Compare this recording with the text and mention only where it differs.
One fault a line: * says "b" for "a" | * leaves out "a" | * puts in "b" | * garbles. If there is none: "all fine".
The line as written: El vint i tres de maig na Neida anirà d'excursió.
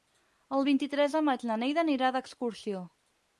all fine